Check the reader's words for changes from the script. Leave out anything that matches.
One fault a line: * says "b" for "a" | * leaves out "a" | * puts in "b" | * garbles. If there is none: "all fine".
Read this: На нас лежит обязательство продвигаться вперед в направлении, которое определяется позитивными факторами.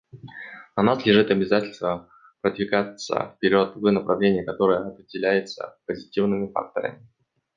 all fine